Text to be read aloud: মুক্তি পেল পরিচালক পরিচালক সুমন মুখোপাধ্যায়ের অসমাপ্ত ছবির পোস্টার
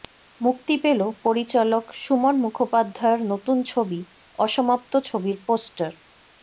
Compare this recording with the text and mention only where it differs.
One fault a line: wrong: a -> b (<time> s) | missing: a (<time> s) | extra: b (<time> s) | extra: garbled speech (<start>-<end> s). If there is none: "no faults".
missing: পরিচালক (1.8 s)
extra: নতুন ছবি (3.3 s)